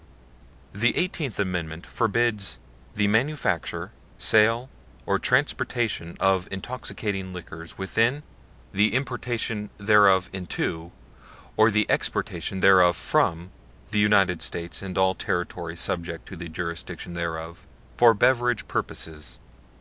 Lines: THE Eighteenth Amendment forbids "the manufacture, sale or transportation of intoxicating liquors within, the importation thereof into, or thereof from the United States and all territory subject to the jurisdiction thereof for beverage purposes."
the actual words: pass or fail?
fail